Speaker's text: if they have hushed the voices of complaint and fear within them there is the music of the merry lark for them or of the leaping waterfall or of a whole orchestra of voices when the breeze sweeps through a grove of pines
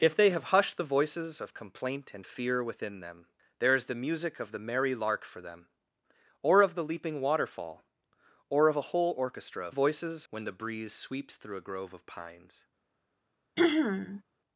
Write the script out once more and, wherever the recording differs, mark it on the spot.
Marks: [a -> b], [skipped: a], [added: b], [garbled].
if they have hushed the voices of complaint and fear within them there is the music of the merry lark for them or of the leaping waterfall or of a whole orchestra of voices when the breeze sweeps through a grove of pines